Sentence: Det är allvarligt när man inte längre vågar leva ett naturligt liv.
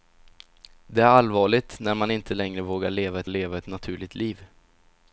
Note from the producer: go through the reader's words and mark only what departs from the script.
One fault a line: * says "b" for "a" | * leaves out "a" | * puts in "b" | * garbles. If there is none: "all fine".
* puts in "leva ett"